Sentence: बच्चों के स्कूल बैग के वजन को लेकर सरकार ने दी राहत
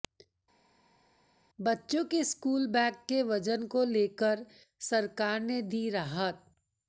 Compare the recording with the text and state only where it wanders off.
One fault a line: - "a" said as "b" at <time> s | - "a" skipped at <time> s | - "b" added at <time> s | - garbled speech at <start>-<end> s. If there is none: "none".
none